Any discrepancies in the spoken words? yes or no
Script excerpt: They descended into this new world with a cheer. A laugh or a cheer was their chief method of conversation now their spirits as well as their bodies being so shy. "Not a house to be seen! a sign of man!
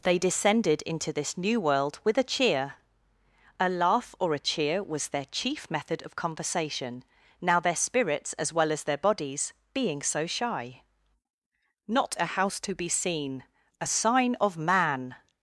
no